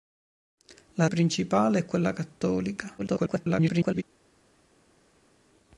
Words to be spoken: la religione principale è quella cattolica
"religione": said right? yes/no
no